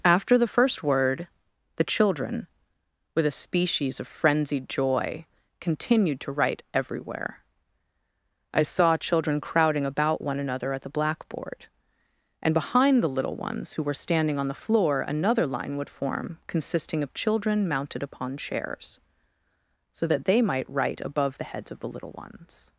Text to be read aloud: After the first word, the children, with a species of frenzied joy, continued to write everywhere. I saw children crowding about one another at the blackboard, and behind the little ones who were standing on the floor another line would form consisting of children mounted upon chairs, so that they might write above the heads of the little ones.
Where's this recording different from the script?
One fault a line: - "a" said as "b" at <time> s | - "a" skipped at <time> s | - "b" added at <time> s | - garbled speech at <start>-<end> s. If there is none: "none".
none